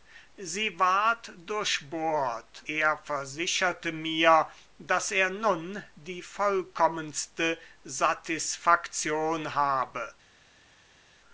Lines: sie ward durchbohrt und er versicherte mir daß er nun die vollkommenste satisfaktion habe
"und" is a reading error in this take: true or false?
true